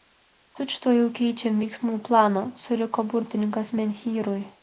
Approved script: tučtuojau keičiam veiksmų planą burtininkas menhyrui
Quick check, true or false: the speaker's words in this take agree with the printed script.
false